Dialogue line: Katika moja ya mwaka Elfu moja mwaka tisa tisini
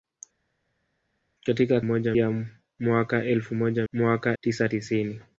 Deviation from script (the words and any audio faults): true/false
false